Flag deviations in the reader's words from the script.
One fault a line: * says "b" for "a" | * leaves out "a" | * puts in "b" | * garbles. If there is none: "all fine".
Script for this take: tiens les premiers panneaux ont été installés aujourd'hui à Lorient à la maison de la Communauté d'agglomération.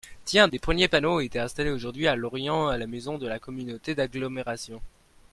all fine